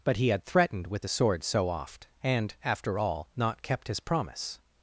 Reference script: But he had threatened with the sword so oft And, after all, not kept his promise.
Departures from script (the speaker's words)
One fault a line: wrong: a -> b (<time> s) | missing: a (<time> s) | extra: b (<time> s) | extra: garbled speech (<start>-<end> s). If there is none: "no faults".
no faults